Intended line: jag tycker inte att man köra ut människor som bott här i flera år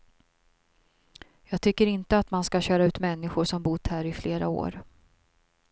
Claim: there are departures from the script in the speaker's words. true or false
true